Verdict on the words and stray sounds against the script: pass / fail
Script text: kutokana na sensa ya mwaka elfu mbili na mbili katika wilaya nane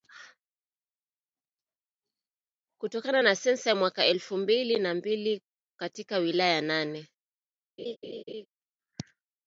fail